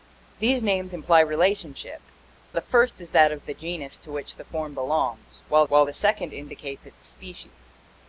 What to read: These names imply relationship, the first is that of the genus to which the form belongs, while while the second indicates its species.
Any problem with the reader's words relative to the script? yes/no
no